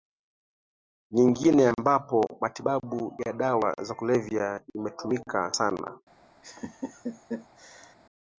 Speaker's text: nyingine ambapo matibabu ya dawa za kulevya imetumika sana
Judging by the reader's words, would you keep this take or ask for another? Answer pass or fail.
pass